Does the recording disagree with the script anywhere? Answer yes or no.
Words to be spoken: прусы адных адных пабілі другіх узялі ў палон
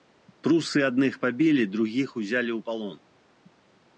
yes